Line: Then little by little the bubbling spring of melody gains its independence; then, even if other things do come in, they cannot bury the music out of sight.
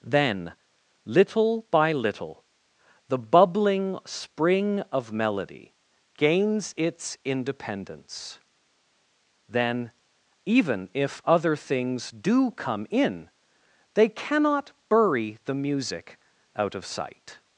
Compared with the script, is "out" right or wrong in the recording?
right